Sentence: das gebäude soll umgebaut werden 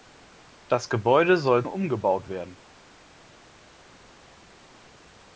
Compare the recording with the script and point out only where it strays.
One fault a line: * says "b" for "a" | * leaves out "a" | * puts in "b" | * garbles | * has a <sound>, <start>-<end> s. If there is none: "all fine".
all fine